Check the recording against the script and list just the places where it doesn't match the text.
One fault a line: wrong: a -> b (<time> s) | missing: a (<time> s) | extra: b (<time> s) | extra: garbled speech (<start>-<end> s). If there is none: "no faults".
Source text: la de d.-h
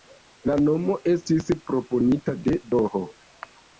extra: nomo estis proponita (0.6 s)